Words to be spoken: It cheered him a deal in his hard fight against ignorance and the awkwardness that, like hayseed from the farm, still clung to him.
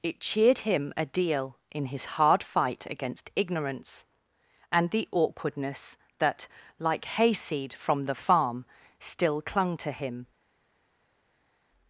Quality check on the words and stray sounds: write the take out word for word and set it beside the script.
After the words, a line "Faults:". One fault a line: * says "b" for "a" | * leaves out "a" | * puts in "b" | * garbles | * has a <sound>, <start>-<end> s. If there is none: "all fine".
It cheered him a deal in his hard fight against ignorance and the awkwardness that, like hayseed from the farm, still clung to him.
Faults:
all fine